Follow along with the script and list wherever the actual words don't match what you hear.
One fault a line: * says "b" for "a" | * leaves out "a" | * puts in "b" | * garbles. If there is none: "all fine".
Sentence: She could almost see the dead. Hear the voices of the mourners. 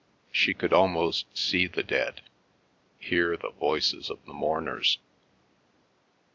all fine